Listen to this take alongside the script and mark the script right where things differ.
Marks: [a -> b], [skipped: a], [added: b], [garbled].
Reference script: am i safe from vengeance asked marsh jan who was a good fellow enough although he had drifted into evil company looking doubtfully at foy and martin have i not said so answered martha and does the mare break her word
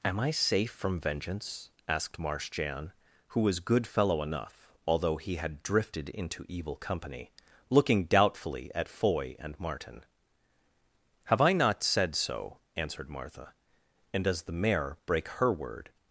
am i safe from vengeance asked marsh jan who was [skipped: a] good fellow enough although he had drifted into evil company looking doubtfully at foy and martin have i not said so answered martha and does the mare break her word